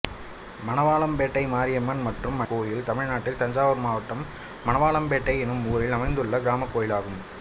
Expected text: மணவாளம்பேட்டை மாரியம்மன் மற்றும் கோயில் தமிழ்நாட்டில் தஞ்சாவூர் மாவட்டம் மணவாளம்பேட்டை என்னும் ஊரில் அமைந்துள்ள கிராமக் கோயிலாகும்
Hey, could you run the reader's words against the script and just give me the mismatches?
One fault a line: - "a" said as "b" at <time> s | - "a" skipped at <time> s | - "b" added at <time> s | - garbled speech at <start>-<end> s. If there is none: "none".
none